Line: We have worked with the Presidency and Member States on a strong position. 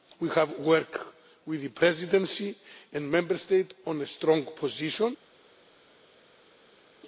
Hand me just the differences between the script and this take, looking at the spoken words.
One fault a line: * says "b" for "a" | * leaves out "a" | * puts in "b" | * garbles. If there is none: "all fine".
all fine